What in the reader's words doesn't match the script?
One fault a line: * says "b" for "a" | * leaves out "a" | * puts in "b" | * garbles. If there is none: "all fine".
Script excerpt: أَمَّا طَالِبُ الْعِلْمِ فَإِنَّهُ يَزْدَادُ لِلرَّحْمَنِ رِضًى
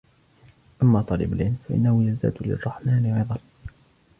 all fine